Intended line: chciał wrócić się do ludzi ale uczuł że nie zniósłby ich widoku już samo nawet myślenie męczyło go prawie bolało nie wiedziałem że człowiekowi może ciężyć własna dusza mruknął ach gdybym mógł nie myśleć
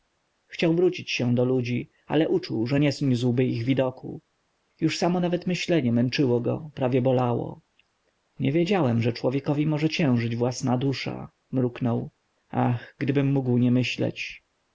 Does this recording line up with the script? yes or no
yes